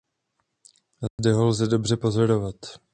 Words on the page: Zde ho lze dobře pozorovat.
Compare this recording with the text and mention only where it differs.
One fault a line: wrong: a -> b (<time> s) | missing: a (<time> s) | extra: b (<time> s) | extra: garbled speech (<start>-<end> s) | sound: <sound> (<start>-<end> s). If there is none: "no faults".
sound: dropout (1.1-1.2 s)